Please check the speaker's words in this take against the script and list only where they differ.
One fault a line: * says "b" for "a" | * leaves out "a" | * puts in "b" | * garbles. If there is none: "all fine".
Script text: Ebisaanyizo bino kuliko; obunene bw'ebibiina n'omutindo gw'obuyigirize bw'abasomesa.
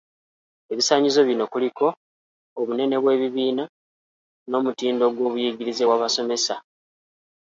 all fine